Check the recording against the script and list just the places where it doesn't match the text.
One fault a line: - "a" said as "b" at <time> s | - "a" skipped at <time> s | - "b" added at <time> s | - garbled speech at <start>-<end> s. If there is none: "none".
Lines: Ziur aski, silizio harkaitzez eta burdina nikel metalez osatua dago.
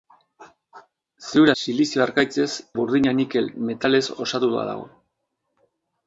- "aski" skipped at 1.5 s
- "eta" skipped at 2.5 s